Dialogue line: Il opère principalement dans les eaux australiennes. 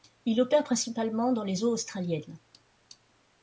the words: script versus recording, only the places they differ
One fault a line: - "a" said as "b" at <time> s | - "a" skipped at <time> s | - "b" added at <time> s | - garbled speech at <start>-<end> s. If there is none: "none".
none